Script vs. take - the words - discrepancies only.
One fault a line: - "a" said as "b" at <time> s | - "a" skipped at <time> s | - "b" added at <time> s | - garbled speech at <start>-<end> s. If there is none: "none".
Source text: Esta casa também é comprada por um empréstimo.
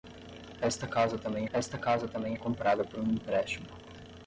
- "esta casa também" added at 1.5 s